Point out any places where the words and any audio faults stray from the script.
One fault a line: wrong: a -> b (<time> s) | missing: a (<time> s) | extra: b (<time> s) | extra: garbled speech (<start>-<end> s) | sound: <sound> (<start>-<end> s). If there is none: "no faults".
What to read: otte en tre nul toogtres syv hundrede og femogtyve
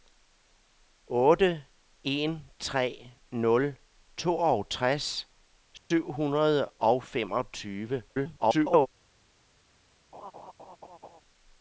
sound: dropout (5.8-5.9 s)
extra: garbled speech (8.1-8.9 s)
sound: laugh (10.1-11.2 s)